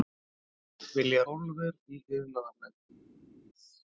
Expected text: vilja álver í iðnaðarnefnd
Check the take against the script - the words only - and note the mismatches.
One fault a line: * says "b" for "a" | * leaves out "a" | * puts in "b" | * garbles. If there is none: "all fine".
all fine